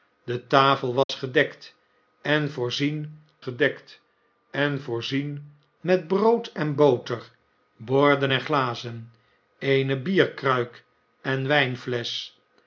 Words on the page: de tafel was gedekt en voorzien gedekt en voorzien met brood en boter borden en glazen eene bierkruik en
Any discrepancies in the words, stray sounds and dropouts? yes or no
yes